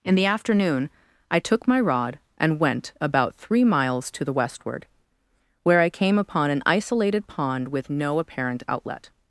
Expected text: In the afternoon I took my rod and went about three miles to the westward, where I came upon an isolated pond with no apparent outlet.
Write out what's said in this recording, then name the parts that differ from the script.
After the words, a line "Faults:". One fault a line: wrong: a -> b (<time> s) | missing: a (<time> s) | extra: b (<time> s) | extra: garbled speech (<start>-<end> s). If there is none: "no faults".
In the afternoon I took my rod and went about three miles to the westward, where I came upon an isolated pond with no apparent outlet.
Faults:
no faults